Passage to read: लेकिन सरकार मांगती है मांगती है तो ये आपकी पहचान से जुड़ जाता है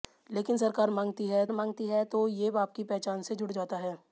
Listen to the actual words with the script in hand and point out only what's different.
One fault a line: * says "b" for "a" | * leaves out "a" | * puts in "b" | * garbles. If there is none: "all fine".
all fine